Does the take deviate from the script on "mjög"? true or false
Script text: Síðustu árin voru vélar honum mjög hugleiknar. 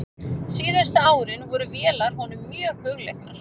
false